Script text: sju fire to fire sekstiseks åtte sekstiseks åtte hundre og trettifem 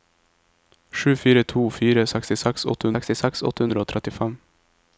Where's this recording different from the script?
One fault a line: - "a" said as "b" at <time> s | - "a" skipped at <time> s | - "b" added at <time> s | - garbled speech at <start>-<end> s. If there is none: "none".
none